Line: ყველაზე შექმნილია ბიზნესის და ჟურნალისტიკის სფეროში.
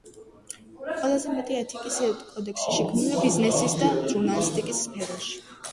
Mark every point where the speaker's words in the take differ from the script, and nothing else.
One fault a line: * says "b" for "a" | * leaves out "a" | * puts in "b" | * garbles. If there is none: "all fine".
* puts in "მეტი ეთიკის კოდექსი"